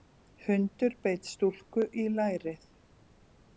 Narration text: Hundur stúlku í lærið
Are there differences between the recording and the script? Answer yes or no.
yes